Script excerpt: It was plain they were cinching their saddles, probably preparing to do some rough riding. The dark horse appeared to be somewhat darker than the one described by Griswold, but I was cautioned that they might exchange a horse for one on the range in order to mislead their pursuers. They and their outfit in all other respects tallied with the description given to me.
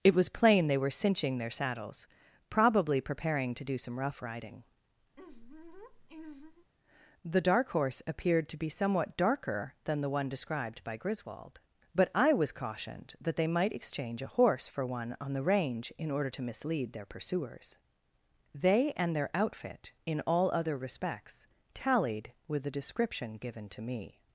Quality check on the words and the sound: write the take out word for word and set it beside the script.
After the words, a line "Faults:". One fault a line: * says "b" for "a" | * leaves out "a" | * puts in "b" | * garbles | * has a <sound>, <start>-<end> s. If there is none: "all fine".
It was plain they were cinching their saddles, probably preparing to do some rough riding. The dark horse appeared to be somewhat darker than the one described by Griswold, but I was cautioned that they might exchange a horse for one on the range in order to mislead their pursuers. They and their outfit in all other respects tallied with the description given to me.
Faults:
* has a laugh, 5.1-6.7 s